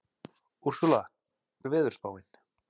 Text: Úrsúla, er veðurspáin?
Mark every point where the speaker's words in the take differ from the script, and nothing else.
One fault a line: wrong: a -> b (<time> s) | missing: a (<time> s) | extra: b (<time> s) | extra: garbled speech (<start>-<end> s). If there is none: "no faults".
no faults